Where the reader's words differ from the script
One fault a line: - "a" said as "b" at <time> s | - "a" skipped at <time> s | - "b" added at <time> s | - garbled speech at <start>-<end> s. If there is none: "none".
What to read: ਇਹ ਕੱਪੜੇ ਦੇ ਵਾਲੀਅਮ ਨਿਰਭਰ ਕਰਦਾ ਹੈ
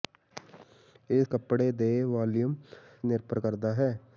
none